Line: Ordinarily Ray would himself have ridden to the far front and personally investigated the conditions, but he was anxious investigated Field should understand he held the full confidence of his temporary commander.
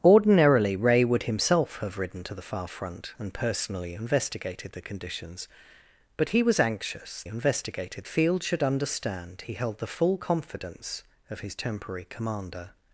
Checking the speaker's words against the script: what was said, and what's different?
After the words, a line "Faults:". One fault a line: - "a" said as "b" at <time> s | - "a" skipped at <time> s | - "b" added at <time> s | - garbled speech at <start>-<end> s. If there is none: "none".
Ordinarily Ray would himself have ridden to the far front and personally investigated the conditions, but he was anxious investigated Field should understand he held the full confidence of his temporary commander.
Faults:
none